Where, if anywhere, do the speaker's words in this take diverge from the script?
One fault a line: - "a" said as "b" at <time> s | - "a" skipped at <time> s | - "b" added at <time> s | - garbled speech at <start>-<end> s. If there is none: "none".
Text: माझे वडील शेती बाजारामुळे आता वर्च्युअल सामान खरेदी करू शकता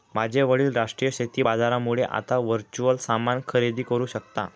- "राष्ट्रीय" added at 0.7 s